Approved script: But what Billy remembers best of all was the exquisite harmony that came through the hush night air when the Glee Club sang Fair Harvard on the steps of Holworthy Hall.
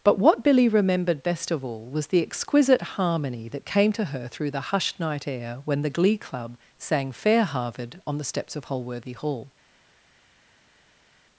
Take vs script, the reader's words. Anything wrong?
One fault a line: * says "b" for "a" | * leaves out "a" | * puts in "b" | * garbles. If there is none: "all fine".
* says "remembered" for "remembers"
* puts in "to her"
* says "hushed" for "hush"